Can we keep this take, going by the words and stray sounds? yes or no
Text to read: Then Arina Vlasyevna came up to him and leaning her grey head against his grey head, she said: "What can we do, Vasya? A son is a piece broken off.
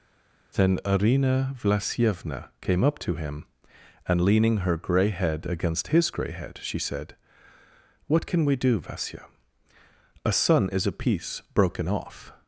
yes